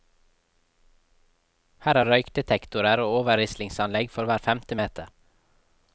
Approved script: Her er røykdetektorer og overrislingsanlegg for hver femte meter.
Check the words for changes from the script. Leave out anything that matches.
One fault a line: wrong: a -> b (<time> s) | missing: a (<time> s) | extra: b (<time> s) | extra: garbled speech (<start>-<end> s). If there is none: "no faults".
no faults